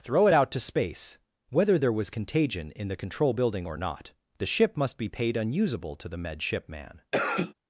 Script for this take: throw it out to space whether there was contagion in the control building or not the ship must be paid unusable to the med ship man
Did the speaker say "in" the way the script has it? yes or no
yes